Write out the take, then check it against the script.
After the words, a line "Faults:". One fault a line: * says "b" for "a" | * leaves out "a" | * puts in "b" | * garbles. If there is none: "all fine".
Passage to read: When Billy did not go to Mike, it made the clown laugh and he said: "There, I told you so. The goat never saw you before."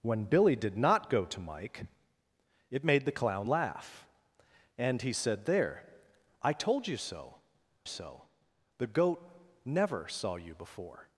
When Billy did not go to Mike, it made the clown laugh and he said: "There, I told you so so. The goat never saw you before."
Faults:
* puts in "so"